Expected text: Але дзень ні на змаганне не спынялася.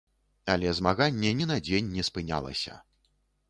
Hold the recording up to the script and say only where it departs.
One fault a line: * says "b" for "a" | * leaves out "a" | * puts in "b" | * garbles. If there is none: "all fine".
* says "змаганне" for "дзень"
* says "дзень" for "змаганне"